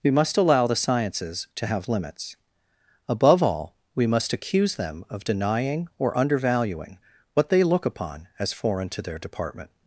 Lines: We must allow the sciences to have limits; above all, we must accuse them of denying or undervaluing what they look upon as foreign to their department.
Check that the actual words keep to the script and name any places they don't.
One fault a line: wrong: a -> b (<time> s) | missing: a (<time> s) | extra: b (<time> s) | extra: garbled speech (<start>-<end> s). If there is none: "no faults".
no faults